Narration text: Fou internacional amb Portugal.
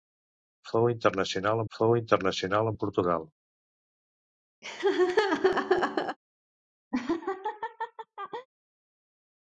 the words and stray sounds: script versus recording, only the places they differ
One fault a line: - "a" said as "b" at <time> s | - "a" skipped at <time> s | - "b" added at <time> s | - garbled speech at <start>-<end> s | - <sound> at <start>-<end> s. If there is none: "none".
- "fou internacional" added at 1.8 s
- laugh at 4.6-6.2 s
- laugh at 6.9-8.5 s